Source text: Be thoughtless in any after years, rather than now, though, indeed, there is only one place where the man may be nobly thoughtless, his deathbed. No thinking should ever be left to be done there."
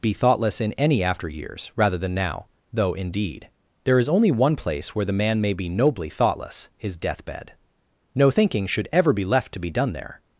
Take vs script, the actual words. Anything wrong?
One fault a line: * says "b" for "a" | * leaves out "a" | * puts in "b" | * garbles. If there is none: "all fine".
all fine